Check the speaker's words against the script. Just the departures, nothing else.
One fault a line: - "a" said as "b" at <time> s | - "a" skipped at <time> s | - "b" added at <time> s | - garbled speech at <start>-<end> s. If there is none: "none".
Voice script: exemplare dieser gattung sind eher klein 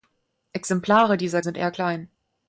- "gattung" skipped at 1.4 s